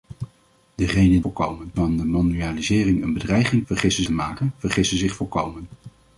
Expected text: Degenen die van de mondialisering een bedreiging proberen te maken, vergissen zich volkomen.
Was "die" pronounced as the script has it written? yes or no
no